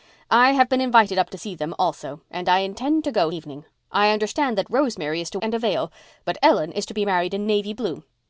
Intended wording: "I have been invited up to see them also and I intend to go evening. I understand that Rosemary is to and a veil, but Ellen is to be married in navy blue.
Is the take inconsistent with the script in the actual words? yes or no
no